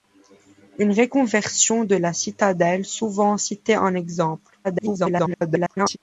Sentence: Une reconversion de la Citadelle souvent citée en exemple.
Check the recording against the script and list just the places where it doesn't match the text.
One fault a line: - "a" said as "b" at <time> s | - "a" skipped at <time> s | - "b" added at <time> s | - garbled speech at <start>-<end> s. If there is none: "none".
- garbled speech at 4.6-6.0 s